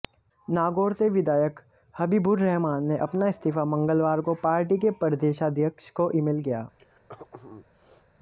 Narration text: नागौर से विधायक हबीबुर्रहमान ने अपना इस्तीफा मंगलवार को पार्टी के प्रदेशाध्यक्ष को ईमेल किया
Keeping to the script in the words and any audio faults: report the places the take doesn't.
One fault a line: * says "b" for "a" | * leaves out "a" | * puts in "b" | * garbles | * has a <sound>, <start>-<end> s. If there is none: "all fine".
* has a throat clearing, 6.8-8.1 s